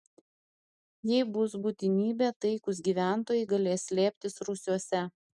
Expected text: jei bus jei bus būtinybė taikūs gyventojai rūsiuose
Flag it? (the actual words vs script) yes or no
yes